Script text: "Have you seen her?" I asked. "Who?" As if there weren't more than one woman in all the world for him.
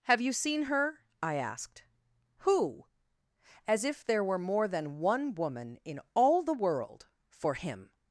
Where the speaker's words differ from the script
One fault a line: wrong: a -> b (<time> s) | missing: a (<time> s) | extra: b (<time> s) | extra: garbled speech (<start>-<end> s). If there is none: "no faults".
wrong: weren't -> were (4.2 s)